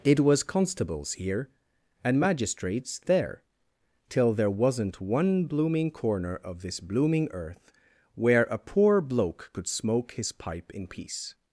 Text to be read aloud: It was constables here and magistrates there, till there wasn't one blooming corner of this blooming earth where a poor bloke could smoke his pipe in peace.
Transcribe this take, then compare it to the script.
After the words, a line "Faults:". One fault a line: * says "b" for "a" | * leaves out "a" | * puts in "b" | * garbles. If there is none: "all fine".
It was constables here and magistrates there, till there wasn't one blooming corner of this blooming earth where a poor bloke could smoke his pipe in peace.
Faults:
all fine